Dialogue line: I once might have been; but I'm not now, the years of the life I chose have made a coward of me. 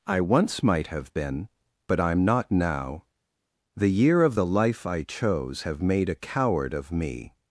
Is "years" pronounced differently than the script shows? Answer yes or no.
yes